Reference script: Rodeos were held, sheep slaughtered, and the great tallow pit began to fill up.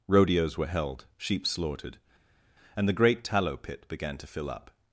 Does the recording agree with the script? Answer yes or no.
yes